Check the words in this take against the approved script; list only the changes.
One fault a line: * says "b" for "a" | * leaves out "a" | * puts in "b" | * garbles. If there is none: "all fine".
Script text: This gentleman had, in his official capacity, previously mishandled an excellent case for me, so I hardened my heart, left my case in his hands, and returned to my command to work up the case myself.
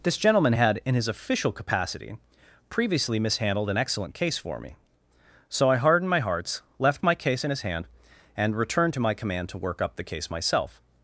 * says "hearts" for "heart"
* says "hand" for "hands"